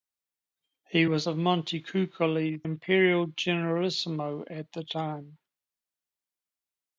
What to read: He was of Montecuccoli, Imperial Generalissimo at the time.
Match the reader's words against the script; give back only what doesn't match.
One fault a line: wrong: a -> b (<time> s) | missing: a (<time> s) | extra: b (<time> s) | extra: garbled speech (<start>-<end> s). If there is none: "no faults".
no faults